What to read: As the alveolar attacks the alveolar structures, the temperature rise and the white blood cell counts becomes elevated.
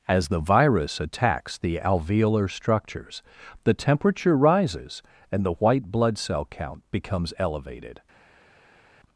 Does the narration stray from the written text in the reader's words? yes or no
yes